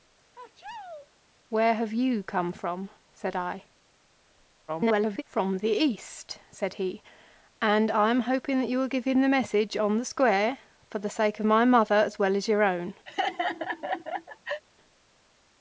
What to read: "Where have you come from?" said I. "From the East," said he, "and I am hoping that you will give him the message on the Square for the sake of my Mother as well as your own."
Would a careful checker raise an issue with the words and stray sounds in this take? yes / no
yes